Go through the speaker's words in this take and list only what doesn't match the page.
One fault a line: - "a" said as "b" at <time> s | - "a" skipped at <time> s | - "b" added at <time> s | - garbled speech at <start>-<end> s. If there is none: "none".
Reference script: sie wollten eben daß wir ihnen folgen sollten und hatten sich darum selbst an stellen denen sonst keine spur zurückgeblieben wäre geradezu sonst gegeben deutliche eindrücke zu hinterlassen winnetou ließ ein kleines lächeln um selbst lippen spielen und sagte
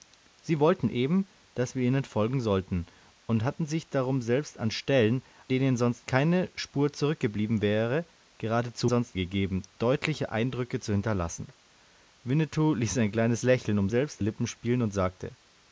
none